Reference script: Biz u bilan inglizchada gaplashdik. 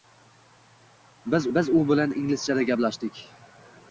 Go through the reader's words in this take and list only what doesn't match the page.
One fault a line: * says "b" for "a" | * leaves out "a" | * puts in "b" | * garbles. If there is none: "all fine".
* puts in "biz"